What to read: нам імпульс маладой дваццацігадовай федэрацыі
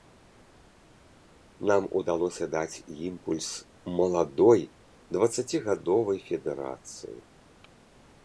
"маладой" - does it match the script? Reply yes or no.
yes